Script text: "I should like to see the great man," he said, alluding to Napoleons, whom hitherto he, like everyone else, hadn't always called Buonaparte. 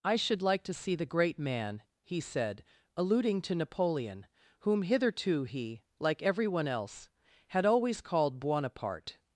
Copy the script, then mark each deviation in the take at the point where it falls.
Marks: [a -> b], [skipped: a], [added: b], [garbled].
"I should like to see the great man," he said, alluding to [Napoleons, -> Napoleon] whom hitherto he, like everyone else, [hadn't -> had] always called Buonaparte.